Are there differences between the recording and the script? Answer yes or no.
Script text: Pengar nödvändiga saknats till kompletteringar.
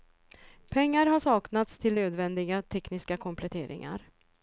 yes